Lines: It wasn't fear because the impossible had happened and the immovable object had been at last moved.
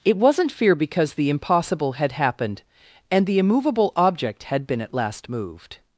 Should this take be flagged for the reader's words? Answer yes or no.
no